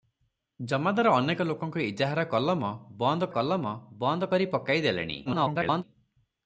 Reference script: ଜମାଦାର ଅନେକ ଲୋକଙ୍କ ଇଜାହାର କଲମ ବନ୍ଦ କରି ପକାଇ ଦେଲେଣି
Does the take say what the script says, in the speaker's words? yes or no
no